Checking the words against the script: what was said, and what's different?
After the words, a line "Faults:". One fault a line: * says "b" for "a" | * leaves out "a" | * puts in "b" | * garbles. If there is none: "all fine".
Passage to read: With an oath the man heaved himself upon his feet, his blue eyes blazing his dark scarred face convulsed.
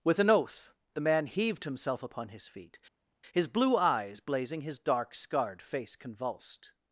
With an oath the man heaved himself upon his feet, his blue eyes blazing his dark scarred face convulsed.
Faults:
all fine